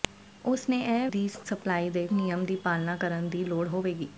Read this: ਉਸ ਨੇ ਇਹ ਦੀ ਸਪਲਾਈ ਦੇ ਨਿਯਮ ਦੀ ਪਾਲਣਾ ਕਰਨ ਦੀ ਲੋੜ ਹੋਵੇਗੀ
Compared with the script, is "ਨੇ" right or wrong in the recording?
right